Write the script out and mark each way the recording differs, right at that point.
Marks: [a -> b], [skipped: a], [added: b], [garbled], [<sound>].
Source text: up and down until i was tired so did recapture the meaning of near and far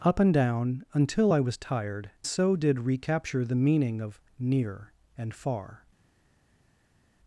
up and down until i was tired so did recapture the meaning of near and far